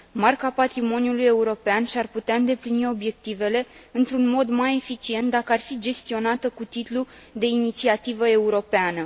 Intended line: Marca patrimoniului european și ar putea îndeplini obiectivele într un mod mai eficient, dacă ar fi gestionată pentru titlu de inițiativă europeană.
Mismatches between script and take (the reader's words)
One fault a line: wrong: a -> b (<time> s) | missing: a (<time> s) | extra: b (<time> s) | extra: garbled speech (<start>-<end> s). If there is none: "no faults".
wrong: pentru -> cu (6.5 s)